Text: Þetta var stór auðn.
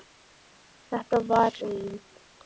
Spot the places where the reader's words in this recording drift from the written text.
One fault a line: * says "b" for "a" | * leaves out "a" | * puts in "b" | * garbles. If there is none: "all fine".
* leaves out "stór"